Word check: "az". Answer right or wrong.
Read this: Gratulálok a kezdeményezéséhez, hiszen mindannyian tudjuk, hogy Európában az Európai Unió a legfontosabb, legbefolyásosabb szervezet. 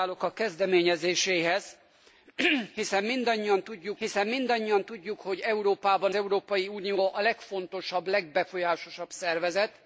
wrong